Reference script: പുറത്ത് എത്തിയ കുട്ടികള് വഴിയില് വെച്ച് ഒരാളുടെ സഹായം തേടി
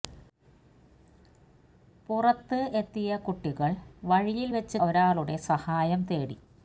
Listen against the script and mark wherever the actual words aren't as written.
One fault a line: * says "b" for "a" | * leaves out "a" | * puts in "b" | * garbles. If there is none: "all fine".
all fine